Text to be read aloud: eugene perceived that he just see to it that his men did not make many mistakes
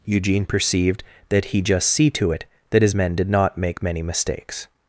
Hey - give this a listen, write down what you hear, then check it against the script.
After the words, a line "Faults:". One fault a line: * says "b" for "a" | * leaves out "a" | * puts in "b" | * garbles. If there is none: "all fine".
eugene perceived that he just see to it that his men did not make many mistakes
Faults:
all fine